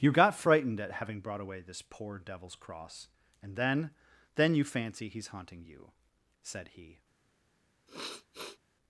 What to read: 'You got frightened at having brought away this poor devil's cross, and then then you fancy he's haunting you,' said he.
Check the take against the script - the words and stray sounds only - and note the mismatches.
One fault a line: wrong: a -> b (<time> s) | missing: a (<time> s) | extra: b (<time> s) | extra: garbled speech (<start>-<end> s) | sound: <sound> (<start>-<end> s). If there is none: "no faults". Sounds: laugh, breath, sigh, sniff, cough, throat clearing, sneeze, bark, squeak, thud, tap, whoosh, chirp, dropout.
sound: sniff (7.9-8.6 s)